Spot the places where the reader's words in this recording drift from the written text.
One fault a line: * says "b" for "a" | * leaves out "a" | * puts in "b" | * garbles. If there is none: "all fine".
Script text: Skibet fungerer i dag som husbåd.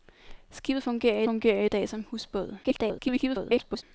* puts in "fungerer"
* garbles